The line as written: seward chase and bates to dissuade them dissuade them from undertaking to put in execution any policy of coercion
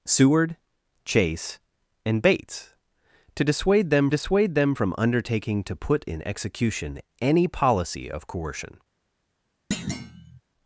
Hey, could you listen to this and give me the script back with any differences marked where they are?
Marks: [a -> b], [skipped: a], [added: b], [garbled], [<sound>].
seward chase and bates to dissuade them dissuade them from undertaking to put in execution any policy of coercion [thud]